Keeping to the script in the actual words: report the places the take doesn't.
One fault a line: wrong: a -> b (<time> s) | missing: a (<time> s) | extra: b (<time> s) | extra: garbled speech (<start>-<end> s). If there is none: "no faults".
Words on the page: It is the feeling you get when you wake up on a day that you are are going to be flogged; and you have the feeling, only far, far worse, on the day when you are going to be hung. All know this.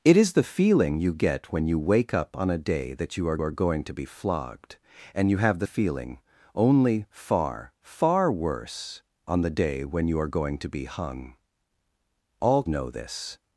no faults